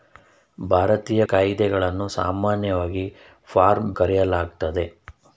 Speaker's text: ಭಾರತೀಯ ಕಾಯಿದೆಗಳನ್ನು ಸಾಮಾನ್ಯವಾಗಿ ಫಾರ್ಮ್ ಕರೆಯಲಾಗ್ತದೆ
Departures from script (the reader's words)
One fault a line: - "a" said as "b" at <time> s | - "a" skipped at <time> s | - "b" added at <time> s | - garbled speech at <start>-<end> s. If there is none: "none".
none